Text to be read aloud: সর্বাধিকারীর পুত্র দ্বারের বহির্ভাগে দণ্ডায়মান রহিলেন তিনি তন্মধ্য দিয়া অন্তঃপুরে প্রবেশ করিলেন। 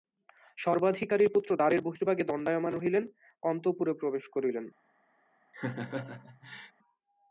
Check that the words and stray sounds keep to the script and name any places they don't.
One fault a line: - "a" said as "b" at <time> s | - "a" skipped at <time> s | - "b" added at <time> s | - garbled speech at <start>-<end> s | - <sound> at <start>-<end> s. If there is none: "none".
- "তিনি তন্মধ্য দিয়া" skipped at 3.0 s
- laugh at 5.5-6.7 s